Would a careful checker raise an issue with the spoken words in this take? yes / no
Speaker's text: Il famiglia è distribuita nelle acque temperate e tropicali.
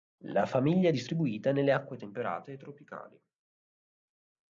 yes